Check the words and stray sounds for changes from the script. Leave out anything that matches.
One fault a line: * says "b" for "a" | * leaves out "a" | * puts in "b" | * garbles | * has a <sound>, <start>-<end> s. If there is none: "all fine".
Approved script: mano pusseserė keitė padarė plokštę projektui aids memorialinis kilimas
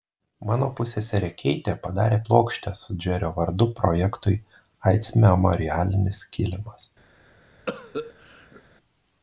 * puts in "su džerio vardu"
* has a cough, 7.7-8.6 s